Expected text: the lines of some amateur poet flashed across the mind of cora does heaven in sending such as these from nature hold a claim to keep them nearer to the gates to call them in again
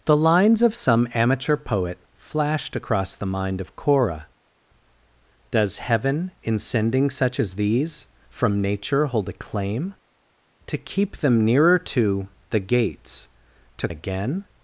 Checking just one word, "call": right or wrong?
wrong